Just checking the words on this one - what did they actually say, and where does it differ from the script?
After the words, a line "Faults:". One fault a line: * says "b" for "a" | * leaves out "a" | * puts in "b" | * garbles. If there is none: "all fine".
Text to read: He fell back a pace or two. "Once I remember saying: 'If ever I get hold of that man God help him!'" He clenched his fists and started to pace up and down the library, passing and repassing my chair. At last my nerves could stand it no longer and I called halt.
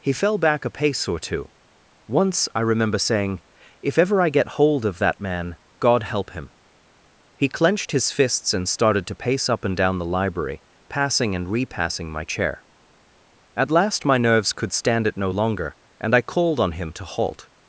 He fell back a pace or two. "Once I remember saying: 'If ever I get hold of that man God help him!'" He clenched his fists and started to pace up and down the library, passing and repassing my chair. At last my nerves could stand it no longer and I called on him to halt.
Faults:
* puts in "on him to"